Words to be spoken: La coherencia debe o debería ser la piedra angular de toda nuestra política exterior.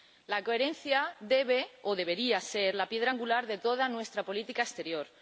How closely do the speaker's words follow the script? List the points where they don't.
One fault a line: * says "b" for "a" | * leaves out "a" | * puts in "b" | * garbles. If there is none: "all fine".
all fine